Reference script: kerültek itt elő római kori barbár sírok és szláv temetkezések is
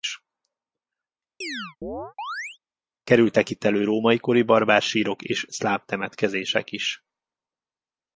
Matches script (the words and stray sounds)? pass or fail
fail